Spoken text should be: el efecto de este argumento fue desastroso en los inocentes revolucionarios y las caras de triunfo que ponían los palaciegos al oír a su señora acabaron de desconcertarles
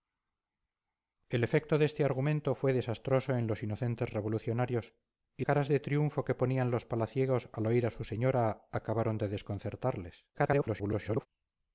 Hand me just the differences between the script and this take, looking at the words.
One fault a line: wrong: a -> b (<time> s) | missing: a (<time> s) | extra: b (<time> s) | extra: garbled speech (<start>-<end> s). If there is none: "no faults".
missing: las (5.5 s)
extra: garbled speech (10.3-11.3 s)